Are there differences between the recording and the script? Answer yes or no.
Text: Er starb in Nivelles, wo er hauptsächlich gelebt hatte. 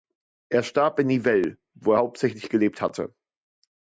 no